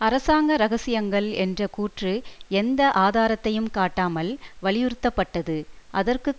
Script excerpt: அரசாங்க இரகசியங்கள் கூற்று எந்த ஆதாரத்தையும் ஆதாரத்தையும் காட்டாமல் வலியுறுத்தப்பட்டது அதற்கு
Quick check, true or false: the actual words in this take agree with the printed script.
false